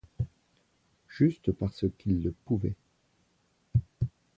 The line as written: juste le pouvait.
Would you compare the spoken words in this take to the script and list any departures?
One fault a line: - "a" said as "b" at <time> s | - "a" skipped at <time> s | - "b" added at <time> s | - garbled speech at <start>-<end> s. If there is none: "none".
- "parce qu'il" added at 1.5 s